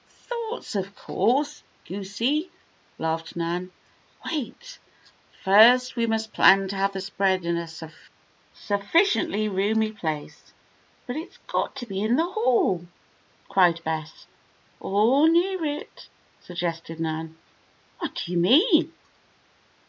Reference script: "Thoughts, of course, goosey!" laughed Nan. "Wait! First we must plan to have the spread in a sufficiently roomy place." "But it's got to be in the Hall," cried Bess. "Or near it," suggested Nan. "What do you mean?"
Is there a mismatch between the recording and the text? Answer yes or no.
no